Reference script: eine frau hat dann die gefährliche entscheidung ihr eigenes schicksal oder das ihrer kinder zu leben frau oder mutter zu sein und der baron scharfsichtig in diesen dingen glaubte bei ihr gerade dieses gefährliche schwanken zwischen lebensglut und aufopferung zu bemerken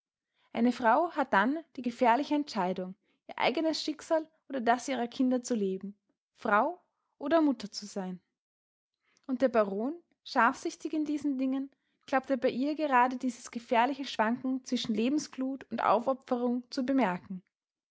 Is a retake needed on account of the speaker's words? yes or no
no